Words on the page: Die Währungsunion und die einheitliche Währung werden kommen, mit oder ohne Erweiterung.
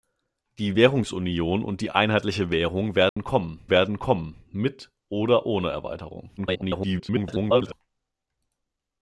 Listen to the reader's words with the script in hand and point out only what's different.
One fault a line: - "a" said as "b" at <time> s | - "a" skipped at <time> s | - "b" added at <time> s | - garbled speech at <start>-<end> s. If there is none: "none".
- "werden kommen" added at 3.7 s
- garbled speech at 6.4-7.7 s